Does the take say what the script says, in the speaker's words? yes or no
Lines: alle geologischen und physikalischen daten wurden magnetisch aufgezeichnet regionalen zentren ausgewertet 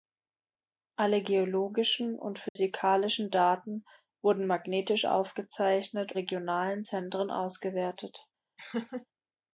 yes